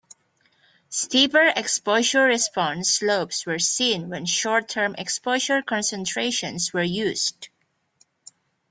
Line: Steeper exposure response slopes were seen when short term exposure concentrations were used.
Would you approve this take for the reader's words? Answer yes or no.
yes